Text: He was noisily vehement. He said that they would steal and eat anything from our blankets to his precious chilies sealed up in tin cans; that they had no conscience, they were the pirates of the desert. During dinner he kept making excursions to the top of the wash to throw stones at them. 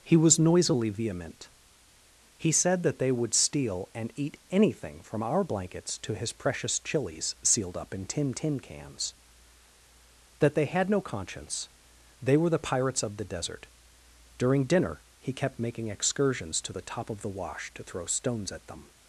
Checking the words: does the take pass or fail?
fail